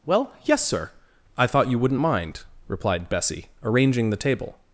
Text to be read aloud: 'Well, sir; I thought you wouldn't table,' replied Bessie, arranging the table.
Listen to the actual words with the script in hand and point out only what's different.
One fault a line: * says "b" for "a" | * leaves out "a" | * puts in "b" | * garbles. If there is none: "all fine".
* puts in "yes"
* says "mind" for "table"